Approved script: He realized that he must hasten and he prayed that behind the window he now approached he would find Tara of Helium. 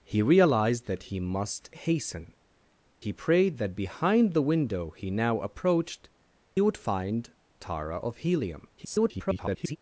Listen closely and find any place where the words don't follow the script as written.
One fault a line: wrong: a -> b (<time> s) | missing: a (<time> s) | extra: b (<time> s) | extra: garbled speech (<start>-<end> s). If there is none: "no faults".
missing: and (2.3 s)
missing: he (6.1 s)
extra: garbled speech (8.8-9.8 s)